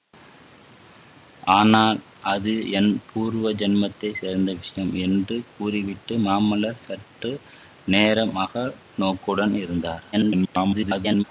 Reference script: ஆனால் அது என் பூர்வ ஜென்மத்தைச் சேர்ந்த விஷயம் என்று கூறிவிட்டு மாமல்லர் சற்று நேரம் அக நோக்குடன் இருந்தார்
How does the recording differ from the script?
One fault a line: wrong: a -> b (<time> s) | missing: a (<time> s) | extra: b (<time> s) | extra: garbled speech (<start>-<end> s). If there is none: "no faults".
extra: garbled speech (10.1-11.2 s)